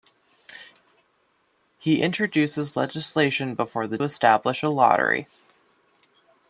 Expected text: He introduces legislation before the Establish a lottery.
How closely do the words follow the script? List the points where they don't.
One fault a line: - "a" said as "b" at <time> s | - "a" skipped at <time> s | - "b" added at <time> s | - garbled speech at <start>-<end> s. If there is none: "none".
none